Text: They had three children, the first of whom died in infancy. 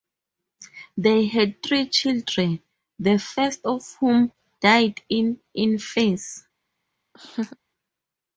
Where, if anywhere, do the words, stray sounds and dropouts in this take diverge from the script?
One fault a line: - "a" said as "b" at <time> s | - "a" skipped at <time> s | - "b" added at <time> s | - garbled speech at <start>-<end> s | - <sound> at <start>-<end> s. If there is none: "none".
- laugh at 7.1-7.6 s